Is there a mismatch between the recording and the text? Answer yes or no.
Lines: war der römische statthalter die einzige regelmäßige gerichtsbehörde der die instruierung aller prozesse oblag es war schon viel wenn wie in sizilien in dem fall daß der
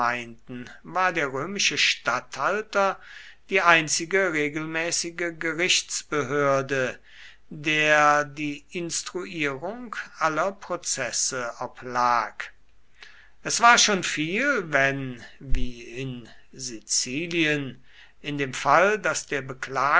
no